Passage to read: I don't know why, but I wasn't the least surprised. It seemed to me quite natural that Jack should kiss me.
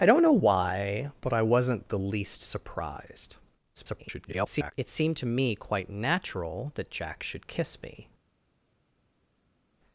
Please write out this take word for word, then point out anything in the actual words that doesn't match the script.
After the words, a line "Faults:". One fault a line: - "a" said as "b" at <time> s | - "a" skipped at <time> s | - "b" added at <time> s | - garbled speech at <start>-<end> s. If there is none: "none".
I don't know why, but I wasn't the least surprised. [garbled] It seemed to me quite natural that Jack should kiss me.
Faults:
- garbled speech at 3.7-4.7 s